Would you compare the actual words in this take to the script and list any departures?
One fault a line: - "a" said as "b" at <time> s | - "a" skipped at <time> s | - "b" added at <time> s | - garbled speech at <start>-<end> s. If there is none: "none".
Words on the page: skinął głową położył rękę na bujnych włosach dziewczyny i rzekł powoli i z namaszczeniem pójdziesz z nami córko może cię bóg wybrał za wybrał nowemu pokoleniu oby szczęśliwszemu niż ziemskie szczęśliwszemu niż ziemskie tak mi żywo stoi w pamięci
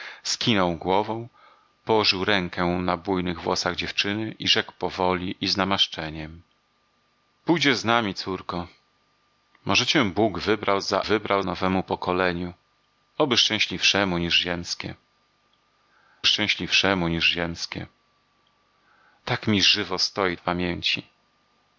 none